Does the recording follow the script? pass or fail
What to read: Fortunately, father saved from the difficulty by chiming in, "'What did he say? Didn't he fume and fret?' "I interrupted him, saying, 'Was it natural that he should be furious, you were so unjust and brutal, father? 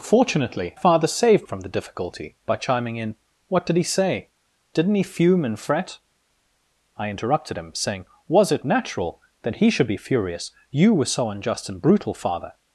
pass